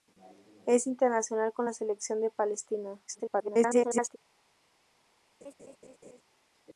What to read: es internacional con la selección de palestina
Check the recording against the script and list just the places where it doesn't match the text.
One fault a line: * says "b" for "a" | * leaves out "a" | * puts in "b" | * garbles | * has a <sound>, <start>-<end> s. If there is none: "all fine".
* garbles
* has a laugh, 5.4-6.2 s